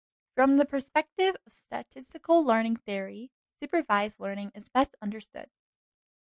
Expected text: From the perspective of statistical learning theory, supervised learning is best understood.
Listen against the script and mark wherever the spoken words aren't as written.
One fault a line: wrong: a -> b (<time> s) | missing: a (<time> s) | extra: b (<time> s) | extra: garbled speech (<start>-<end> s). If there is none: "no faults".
no faults